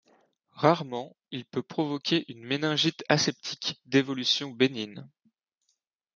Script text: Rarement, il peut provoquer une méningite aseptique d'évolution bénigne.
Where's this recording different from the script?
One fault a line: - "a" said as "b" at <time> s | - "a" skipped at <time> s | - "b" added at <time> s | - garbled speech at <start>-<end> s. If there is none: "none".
none